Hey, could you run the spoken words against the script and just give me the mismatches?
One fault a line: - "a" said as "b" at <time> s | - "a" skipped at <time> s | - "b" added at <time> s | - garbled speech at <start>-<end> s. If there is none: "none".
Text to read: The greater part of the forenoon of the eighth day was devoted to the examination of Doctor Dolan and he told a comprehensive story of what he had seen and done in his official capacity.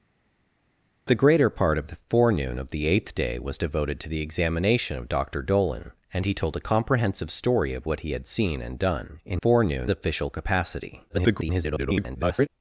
- "his" said as "forenoon" at 9.4 s
- garbled speech at 11.1-12.5 s